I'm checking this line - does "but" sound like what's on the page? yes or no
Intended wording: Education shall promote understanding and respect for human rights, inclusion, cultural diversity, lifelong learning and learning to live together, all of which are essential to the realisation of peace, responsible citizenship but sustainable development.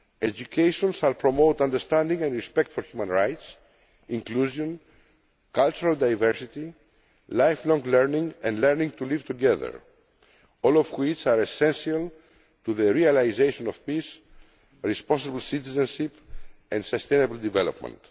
no